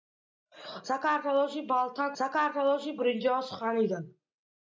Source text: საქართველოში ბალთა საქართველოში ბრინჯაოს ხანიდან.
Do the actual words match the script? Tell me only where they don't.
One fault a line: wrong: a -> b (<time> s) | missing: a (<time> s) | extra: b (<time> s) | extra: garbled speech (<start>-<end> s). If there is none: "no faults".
no faults